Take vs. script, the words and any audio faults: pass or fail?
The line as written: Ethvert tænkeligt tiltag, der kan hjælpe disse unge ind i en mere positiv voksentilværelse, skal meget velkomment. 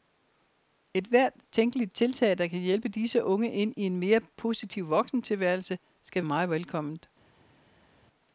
pass